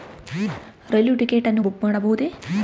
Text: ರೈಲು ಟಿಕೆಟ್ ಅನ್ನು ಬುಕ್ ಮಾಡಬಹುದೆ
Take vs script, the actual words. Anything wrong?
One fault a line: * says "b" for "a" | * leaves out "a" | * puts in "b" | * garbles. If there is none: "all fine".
all fine